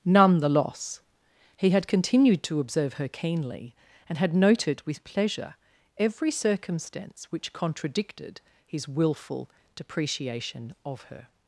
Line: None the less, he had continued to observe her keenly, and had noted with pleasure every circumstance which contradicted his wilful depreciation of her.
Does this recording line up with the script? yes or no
no